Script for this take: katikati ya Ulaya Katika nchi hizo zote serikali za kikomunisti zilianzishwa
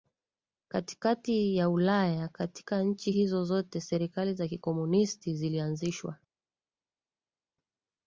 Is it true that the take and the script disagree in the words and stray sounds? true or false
false